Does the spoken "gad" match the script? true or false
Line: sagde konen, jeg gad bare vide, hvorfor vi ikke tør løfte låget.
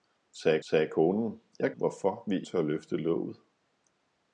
false